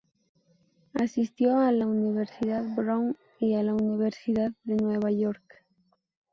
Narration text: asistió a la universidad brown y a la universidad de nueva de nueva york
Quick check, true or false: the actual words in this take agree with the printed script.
false